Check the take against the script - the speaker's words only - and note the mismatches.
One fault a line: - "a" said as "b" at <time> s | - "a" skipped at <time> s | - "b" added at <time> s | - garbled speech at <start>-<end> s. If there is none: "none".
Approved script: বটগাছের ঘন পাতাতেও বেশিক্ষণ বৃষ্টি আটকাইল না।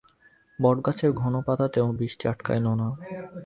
- "বেশিক্ষণ" skipped at 1.9 s